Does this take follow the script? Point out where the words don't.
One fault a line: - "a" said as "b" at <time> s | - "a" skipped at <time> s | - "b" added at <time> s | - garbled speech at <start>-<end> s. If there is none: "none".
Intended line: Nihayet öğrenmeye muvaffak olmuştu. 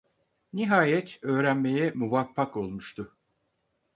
none